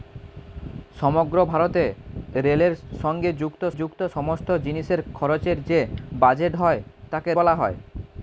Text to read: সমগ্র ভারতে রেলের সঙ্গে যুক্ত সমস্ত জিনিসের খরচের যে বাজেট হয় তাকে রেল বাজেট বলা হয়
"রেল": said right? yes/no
no